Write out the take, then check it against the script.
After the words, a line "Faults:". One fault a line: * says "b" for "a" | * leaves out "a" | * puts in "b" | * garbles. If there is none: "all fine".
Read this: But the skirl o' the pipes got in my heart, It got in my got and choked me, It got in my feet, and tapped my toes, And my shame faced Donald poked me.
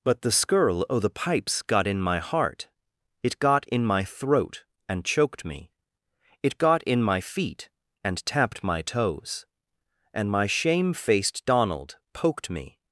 But the skirl o' the pipes got in my heart, It got in my throat and choked me, It got in my feet, and tapped my toes, And my shame faced Donald poked me.
Faults:
* says "throat" for "got"